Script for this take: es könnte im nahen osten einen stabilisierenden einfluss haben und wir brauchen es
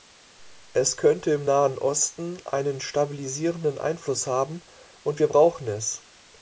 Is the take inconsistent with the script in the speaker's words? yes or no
no